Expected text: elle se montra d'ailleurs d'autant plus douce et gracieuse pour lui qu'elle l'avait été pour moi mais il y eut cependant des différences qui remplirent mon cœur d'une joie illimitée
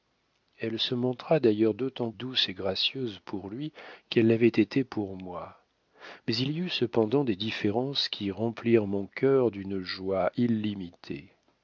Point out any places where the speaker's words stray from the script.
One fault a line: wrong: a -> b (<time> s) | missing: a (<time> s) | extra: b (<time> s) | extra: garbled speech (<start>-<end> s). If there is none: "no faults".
missing: plus (2.1 s)